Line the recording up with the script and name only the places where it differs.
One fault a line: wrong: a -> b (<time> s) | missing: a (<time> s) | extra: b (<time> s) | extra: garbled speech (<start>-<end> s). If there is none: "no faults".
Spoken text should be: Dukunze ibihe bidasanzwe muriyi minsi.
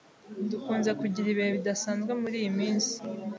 extra: kugira (1.0 s)